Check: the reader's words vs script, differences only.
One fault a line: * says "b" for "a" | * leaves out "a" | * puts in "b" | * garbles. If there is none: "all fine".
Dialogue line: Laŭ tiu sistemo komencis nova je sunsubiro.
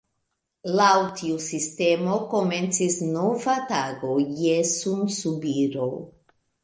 * puts in "tago"